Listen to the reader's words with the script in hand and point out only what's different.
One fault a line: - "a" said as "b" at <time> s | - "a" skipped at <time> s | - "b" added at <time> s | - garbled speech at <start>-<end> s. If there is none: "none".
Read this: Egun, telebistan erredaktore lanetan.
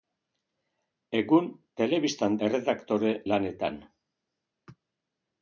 none